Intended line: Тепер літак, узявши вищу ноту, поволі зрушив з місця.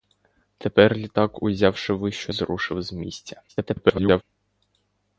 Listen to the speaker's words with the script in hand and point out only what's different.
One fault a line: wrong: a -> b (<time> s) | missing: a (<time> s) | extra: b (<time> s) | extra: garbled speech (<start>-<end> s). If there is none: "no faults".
missing: ноту поволі (2.3 s)
extra: garbled speech (3.5-4.2 s)